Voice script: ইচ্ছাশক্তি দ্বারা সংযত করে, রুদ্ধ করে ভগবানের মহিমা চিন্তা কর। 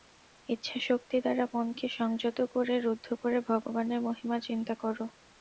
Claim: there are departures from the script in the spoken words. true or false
true